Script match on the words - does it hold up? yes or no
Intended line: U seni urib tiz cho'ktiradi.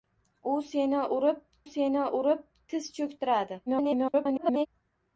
no